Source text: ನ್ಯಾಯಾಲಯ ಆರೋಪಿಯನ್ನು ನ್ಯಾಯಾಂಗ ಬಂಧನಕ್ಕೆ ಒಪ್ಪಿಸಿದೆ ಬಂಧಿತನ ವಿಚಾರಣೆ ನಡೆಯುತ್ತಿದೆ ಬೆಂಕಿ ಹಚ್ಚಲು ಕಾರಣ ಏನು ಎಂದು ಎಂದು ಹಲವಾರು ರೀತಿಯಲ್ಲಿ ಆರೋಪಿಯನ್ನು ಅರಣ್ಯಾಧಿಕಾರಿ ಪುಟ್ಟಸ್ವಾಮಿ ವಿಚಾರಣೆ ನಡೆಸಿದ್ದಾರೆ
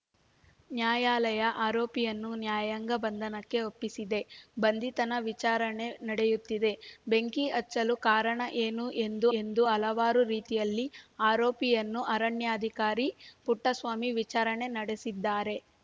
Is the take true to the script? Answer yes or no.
yes